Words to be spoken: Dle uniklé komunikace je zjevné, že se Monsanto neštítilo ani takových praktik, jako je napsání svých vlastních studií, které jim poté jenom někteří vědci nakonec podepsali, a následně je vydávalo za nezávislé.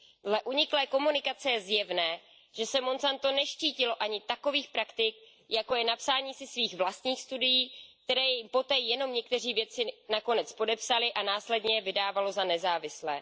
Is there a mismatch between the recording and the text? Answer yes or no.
yes